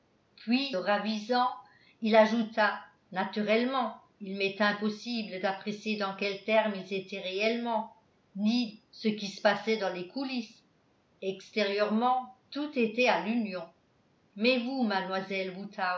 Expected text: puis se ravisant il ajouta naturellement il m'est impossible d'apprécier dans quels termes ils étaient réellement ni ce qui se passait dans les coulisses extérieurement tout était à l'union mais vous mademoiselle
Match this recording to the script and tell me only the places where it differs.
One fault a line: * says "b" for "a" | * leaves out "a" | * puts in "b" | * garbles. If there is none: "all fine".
* leaves out "se"